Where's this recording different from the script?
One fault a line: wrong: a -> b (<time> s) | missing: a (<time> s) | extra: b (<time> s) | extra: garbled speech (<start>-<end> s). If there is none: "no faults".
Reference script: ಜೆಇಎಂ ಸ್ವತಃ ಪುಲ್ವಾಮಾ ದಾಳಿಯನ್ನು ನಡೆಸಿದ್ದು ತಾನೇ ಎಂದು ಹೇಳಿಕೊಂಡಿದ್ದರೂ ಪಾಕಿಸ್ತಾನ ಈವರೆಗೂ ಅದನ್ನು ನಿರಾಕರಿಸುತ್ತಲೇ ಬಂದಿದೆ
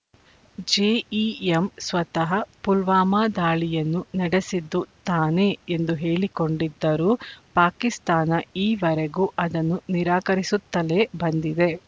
no faults